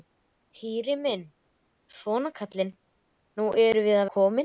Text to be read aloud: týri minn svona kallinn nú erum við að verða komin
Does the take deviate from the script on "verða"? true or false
true